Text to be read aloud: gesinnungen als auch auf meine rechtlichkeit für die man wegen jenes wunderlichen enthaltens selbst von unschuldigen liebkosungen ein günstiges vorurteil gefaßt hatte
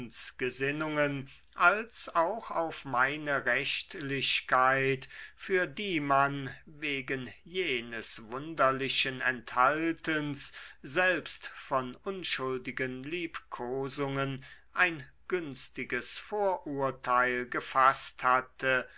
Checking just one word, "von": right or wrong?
right